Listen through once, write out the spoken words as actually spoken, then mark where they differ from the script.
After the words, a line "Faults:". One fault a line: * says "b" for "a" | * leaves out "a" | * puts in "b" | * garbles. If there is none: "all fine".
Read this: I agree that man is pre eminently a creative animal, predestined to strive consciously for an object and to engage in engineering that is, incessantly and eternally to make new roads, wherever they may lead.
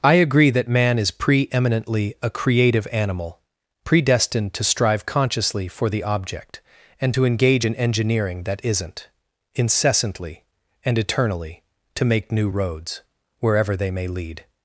I agree that man is pre eminently a creative animal, predestined to strive consciously for the object and to engage in engineering that isn't, incessantly and eternally to make new roads, wherever they may lead.
Faults:
* says "the" for "an"
* says "isn't" for "is"